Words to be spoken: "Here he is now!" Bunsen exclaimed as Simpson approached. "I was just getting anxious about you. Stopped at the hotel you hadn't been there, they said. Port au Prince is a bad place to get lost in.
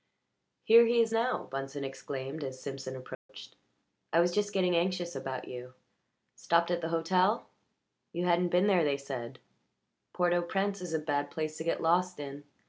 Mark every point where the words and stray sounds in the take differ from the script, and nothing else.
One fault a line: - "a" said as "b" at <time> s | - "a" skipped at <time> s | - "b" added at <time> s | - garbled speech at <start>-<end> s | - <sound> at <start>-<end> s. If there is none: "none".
- dropout at 3.1-3.3 s